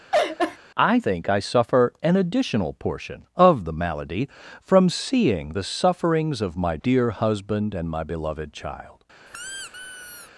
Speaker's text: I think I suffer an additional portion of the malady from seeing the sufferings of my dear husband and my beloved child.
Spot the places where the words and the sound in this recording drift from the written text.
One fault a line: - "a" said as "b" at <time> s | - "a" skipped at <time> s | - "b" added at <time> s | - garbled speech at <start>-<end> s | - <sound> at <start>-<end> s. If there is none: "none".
- laugh at 0.1-0.6 s
- squeak at 9.3-10.3 s